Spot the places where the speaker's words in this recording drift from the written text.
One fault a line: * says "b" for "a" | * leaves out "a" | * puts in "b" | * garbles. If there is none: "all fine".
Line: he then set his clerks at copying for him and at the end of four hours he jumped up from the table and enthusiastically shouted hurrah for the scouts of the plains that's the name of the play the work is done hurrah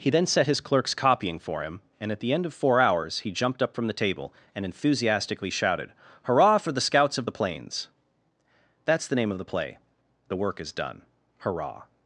* leaves out "at"